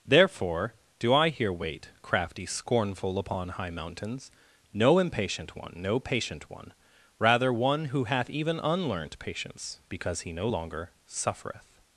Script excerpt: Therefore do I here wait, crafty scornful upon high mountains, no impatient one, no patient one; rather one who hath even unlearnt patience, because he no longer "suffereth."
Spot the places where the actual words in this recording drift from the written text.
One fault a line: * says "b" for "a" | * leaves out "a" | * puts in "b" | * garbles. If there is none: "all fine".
all fine